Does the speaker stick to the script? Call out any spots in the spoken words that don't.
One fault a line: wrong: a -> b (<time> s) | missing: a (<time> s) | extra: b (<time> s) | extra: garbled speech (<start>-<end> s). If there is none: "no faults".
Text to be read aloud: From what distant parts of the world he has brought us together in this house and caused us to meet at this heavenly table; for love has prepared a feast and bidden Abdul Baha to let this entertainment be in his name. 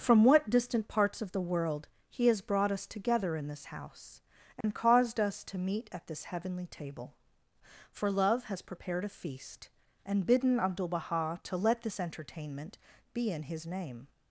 no faults